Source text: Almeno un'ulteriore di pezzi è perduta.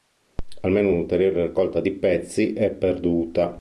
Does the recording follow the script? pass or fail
fail